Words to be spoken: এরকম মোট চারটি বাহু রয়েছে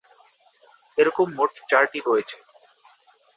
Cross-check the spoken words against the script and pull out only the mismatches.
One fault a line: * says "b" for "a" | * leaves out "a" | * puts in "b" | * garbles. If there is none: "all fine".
* leaves out "বাহু"